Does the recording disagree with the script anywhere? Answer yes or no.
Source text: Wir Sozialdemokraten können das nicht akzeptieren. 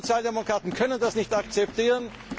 no